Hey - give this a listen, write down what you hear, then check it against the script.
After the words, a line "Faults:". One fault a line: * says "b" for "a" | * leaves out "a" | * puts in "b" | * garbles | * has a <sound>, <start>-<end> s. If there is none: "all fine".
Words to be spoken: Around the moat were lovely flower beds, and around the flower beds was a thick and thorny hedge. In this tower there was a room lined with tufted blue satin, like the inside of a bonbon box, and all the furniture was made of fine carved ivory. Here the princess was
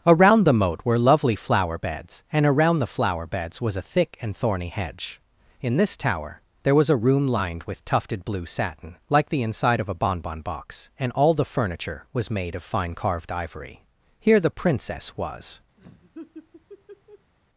Around the moat were lovely flower beds, and around the flower beds was a thick and thorny hedge. In this tower there was a room lined with tufted blue satin, like the inside of a bonbon box, and all the furniture was made of fine carved ivory. Here the princess was
Faults:
* has a laugh, 15.8-17.3 s